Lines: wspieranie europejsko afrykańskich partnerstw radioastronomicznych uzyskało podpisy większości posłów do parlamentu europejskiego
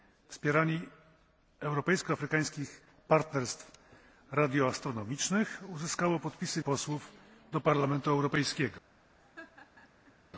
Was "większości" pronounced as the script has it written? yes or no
no